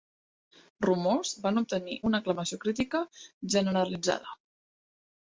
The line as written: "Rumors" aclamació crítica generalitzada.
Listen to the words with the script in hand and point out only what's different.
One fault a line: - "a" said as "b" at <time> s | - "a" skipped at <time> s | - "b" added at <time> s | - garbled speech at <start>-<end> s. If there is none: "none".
- "van obtenir una" added at 1.4 s